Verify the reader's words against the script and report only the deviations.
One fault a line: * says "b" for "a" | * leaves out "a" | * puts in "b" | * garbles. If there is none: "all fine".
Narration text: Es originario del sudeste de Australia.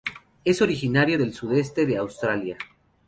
all fine